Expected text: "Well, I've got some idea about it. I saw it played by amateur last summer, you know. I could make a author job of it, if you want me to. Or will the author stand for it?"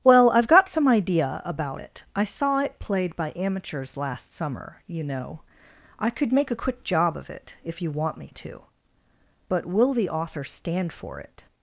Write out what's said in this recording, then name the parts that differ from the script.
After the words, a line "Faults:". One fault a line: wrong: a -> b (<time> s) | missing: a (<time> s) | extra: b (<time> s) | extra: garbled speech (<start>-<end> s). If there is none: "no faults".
"Well, I've got some idea about it. I saw it played by amateurs last summer, you know. I could make a quick job of it, if you want me to. But will the author stand for it?"
Faults:
wrong: amateur -> amateurs (3.3 s)
wrong: author -> quick (6.6 s)
wrong: Or -> But (9.5 s)